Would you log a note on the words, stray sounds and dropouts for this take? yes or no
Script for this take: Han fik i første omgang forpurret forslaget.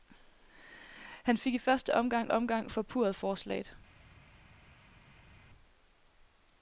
yes